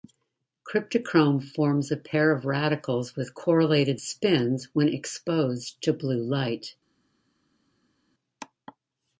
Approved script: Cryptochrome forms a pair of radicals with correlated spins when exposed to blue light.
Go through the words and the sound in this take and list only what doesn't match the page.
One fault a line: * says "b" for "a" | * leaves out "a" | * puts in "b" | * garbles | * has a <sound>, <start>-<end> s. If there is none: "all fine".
all fine